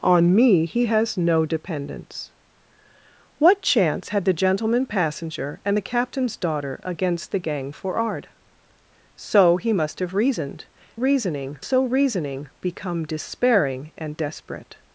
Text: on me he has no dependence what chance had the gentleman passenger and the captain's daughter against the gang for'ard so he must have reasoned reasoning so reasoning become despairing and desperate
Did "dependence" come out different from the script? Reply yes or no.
no